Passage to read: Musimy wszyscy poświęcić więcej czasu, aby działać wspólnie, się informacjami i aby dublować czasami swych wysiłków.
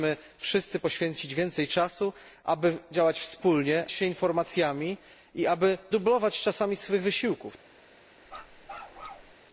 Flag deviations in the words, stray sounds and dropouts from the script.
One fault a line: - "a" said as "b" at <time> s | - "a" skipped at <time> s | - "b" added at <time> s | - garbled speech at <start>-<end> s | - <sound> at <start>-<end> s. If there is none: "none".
- bark at 8.3-9.3 s